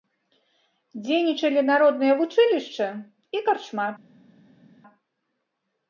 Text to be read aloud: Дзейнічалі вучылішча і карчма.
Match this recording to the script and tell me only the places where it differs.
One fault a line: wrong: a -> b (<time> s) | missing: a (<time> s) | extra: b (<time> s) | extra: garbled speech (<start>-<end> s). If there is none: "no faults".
extra: народнае (1.7 s)